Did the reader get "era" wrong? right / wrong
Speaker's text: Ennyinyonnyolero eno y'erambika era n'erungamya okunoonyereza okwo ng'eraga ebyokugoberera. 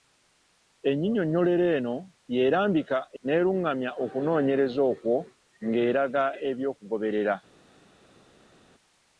wrong